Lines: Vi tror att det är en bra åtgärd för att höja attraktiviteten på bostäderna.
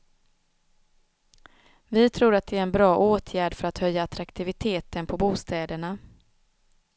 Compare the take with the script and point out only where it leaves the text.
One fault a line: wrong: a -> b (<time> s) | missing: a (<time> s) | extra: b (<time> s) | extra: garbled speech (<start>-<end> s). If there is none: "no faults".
no faults